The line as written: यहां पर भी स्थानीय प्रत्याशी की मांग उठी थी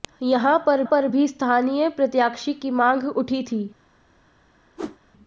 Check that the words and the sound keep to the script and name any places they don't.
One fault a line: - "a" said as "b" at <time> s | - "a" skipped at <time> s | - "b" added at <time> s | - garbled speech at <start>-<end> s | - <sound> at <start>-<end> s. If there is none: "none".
- "पर" added at 0.8 s
- whoosh at 4.8-5.0 s